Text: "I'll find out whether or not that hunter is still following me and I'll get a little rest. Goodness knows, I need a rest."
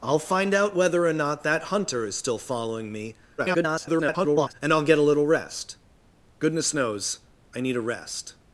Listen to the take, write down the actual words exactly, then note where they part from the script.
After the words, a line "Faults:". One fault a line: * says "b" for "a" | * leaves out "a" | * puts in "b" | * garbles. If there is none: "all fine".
"I'll find out whether or not that hunter is still following me [garbled] and I'll get a little rest. Goodness knows, I need a rest."
Faults:
* garbles